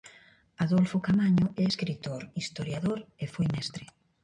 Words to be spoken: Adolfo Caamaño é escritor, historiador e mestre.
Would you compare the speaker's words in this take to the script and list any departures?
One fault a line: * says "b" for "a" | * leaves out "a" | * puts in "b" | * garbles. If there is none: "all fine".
* puts in "foi"